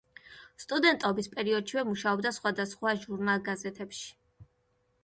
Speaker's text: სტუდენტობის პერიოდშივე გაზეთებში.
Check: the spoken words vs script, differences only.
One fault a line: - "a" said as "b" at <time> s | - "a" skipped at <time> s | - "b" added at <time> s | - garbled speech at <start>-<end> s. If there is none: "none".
- "მუშაობდა სხვადასხვა ჟურნალ" added at 1.9 s